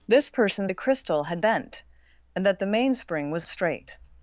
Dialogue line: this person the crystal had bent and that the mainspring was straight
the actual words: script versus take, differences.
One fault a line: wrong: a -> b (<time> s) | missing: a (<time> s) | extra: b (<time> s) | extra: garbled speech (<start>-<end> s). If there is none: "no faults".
no faults